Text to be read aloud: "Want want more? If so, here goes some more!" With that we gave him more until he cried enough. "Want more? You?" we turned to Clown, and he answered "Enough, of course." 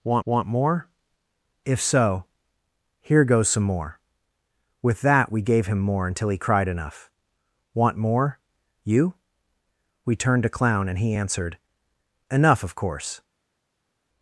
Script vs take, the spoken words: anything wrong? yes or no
no